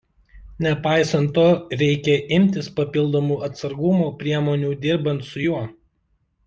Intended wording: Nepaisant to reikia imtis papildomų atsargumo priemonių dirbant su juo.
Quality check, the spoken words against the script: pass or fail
pass